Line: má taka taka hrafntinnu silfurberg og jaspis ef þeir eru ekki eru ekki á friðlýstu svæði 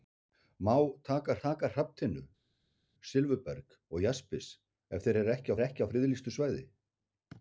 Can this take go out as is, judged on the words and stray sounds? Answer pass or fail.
pass